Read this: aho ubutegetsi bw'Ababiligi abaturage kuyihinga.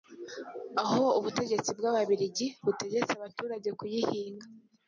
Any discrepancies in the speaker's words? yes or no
yes